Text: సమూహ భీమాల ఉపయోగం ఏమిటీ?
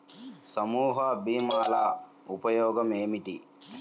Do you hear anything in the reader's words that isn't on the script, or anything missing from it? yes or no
no